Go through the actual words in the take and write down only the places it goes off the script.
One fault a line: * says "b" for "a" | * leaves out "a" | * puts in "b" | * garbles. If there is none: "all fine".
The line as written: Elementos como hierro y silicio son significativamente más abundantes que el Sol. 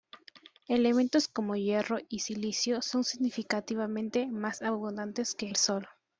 all fine